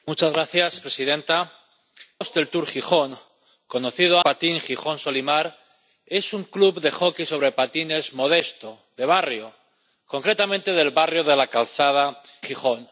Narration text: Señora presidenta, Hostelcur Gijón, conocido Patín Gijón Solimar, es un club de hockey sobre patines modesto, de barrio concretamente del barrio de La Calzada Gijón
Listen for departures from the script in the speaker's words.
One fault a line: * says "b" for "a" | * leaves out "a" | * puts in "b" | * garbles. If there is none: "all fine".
all fine